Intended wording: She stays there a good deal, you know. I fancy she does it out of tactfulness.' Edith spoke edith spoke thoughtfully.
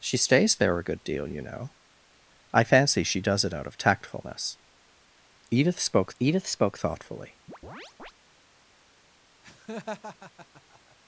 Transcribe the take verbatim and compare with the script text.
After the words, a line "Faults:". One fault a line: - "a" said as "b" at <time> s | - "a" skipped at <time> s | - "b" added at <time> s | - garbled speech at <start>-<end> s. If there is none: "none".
She stays there a good deal, you know. I fancy she does it out of tactfulness.' Edith spoke edith spoke thoughtfully.
Faults:
none